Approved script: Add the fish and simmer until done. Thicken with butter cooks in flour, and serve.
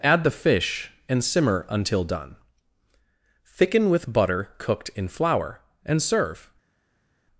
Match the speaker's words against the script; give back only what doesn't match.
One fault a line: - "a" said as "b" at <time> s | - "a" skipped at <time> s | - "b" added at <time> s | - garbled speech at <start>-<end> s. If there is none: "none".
- "cooks" said as "cooked" at 4.6 s